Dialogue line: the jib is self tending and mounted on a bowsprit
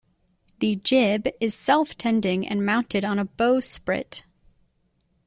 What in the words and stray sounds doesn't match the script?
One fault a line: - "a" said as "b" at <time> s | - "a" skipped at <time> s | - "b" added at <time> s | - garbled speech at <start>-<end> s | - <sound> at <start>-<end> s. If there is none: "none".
none